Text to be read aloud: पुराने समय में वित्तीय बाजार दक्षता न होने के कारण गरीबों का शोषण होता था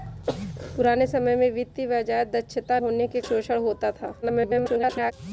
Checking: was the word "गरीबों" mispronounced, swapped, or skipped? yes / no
yes